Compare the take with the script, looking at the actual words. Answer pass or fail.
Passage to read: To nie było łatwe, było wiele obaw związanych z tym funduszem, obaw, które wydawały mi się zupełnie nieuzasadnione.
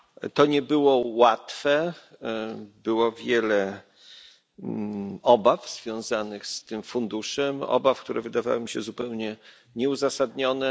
pass